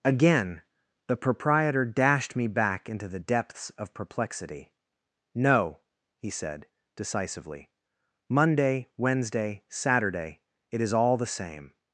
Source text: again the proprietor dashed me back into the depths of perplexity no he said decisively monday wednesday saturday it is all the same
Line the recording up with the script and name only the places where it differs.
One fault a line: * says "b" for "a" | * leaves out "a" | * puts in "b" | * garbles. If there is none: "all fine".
all fine